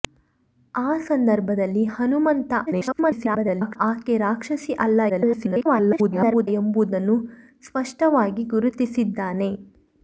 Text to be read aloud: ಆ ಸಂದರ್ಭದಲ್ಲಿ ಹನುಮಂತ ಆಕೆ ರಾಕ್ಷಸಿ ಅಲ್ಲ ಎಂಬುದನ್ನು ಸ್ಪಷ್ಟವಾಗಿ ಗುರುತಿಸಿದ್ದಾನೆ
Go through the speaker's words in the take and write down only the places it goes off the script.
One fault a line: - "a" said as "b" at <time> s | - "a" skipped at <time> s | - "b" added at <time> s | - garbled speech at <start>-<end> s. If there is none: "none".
- garbled speech at 2.7-3.8 s
- garbled speech at 5.1-6.5 s